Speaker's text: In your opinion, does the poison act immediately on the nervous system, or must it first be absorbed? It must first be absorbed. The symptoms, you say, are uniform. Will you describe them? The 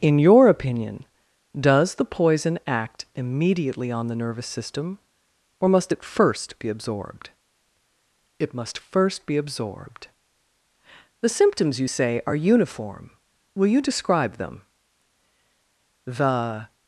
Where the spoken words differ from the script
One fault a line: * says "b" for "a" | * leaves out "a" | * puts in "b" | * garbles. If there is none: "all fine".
all fine